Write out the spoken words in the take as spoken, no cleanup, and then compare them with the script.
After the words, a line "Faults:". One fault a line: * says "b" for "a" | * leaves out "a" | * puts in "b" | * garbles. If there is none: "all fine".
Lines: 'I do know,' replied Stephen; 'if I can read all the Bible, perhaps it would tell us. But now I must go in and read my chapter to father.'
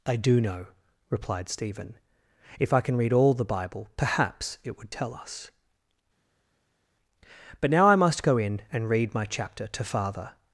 'I do know,' replied Stephen; 'if I can read all the Bible, perhaps it would tell us. But now I must go in and read my chapter to father.'
Faults:
all fine